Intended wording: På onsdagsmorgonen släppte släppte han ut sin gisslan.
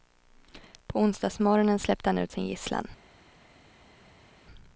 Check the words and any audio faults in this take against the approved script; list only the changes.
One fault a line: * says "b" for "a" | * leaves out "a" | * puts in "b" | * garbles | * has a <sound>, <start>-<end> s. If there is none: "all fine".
* leaves out "släppte"